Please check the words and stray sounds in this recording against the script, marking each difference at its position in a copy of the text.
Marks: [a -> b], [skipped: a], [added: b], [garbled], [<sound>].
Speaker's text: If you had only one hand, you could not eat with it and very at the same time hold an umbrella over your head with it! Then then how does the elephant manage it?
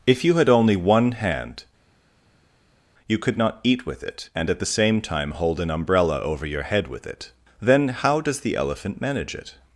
If you had only one hand, you could not eat with it and [skipped: very] at the same time hold an umbrella over your head with it! Then [skipped: then] how does the elephant manage it?